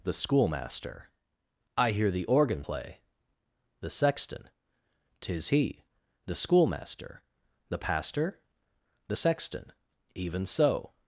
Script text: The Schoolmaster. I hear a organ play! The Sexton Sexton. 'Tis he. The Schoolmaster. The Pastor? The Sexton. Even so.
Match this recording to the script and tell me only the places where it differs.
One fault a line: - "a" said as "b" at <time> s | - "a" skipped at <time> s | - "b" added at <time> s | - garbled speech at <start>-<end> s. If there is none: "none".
- "a" said as "the" at 2.1 s
- "Sexton" skipped at 4.5 s